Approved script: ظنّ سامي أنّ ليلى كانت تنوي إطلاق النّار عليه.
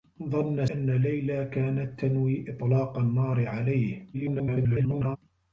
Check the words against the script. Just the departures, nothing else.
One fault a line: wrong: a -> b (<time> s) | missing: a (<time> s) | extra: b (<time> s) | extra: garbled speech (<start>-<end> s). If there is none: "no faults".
missing: سامي (0.7 s)
extra: garbled speech (4.1-5.2 s)